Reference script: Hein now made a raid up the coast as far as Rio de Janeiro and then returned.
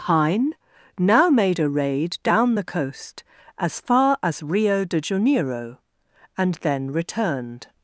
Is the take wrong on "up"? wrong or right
wrong